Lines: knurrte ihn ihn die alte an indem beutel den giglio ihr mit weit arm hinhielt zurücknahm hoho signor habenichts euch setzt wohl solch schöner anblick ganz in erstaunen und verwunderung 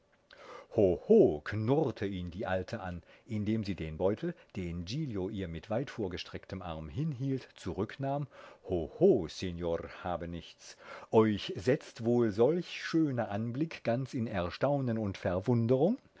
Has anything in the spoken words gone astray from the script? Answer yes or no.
yes